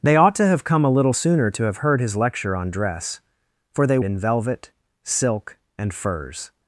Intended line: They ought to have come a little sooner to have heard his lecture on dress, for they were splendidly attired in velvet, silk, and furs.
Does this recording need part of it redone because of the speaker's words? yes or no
yes